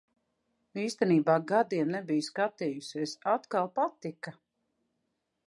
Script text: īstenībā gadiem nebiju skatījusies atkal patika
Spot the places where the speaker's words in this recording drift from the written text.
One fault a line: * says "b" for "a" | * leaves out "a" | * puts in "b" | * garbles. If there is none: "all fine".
all fine